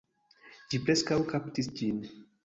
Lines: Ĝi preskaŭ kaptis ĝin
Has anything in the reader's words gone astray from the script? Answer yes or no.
no